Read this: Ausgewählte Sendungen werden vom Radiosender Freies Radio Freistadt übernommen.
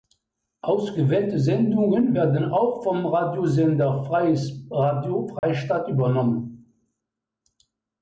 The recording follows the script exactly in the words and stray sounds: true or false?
false